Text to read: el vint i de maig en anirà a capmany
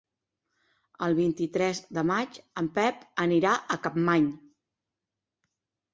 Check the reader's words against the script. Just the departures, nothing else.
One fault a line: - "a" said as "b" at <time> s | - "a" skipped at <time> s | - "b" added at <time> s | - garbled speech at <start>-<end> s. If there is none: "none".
- "tres" added at 1.6 s
- "pep" added at 2.8 s